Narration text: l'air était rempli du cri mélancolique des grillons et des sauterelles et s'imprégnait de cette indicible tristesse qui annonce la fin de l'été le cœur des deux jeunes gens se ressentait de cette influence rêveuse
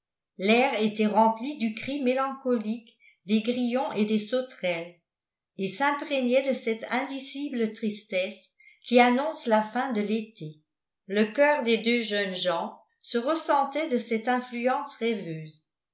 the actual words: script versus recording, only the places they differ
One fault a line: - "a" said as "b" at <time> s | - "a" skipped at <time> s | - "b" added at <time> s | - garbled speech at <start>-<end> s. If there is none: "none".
none